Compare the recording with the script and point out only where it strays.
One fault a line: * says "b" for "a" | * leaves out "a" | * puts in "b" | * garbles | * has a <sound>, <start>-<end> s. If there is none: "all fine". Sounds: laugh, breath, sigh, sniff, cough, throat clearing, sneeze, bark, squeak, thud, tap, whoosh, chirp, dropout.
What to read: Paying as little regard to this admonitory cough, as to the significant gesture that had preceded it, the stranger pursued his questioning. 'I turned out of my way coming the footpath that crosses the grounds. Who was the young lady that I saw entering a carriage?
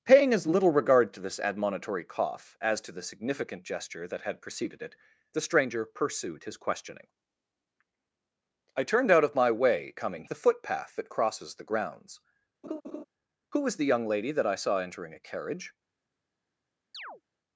* has a laugh, 12.6-13.0 s
* has a chirp, 16.9-17.2 s